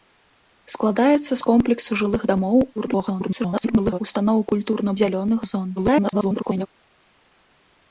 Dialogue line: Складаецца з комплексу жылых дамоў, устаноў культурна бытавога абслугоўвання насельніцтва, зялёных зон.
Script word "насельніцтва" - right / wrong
wrong